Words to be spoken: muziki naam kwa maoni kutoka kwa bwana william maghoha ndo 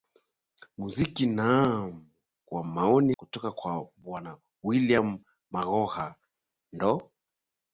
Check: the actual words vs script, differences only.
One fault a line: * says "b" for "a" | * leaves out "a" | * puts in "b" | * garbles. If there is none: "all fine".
all fine